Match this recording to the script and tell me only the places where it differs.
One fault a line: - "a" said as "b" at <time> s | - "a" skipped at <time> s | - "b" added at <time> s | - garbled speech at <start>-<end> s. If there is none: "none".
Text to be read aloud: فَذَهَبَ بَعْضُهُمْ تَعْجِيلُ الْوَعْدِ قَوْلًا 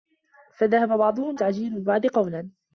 none